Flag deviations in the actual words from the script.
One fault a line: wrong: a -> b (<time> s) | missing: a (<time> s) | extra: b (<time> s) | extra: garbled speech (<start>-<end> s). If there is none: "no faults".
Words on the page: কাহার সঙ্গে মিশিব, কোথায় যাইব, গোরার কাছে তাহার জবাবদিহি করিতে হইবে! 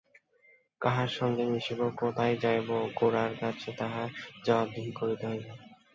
no faults